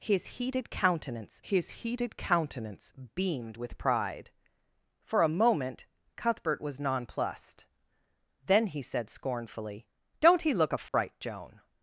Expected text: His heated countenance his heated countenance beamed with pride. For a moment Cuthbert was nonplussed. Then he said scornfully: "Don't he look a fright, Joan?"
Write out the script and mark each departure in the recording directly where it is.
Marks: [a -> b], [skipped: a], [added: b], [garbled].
His heated countenance his heated countenance beamed with pride. For a moment Cuthbert was nonplussed. Then he said scornfully: "Don't he look a fright, Joan?"